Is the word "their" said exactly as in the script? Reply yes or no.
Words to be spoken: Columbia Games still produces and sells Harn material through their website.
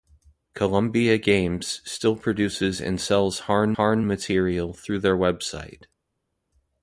yes